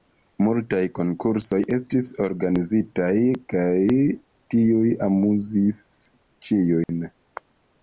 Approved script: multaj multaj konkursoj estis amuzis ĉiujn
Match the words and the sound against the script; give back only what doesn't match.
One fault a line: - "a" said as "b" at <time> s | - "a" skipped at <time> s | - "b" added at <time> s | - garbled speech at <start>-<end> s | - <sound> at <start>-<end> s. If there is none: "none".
- "multaj" skipped at 0.8 s
- "organizitaj kaj tiuj" added at 2.3 s
- dropout at 6.8-6.9 s